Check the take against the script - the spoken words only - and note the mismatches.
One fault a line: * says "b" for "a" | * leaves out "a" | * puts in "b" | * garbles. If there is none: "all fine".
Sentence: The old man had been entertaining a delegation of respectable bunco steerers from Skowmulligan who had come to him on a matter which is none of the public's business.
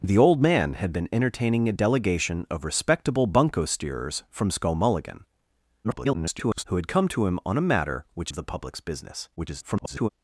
* garbles
* leaves out "is none"
* garbles